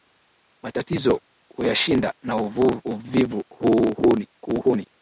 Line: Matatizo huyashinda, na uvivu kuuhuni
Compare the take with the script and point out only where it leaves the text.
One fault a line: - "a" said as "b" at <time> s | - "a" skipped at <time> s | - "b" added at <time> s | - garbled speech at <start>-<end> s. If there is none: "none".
none